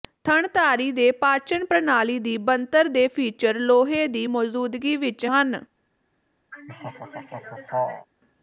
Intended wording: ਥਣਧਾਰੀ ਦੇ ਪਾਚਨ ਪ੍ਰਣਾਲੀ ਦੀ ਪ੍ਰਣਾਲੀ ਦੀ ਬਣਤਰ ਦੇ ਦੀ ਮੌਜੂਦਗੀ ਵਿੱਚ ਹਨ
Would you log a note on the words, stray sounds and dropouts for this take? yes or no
yes